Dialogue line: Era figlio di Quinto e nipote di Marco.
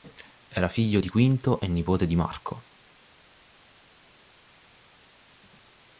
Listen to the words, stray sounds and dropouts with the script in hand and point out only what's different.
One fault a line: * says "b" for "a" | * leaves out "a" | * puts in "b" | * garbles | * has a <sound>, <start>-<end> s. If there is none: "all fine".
all fine